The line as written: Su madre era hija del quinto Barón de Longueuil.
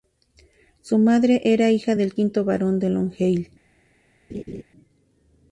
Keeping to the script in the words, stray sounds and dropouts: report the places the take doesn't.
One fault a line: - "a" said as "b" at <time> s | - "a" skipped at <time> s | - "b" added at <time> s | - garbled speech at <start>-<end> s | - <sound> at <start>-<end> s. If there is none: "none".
- laugh at 4.3-4.6 s